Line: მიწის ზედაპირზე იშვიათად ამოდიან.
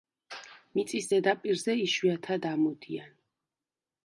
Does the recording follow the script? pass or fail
pass